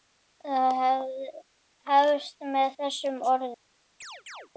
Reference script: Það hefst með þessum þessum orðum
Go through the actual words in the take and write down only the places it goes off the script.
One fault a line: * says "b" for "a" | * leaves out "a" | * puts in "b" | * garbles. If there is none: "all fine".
* leaves out "þessum"